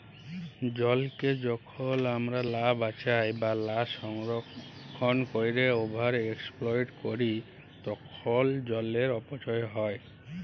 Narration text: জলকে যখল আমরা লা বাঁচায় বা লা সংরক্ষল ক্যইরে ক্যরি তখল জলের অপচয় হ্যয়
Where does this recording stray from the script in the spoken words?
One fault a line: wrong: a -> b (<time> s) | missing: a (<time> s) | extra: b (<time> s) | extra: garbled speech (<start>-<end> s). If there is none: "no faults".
extra: ওভার এক্সপ্লইট (5.8 s)